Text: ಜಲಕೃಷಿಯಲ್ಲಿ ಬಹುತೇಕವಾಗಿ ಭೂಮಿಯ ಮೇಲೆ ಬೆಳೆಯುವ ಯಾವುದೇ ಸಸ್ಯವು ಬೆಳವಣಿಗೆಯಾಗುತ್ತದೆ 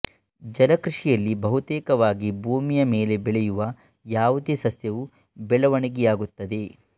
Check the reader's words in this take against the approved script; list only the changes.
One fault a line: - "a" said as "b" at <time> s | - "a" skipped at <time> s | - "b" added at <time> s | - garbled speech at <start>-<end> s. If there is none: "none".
none